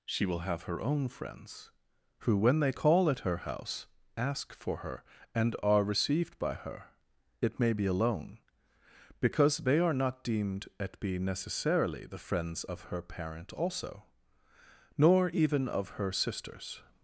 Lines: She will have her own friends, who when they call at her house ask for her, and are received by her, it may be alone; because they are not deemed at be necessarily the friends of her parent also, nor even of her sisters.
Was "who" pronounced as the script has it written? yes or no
yes